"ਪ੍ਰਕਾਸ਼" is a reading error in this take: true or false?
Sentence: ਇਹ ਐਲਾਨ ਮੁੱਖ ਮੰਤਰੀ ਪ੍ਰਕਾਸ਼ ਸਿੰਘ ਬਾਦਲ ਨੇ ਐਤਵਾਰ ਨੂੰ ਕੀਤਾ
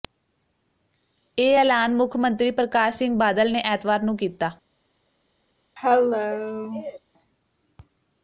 false